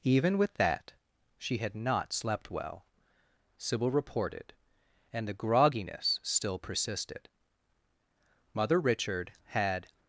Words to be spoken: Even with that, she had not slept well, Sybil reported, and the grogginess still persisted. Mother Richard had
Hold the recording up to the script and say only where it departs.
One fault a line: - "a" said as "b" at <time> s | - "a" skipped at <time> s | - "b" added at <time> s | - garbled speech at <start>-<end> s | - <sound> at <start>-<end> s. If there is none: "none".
none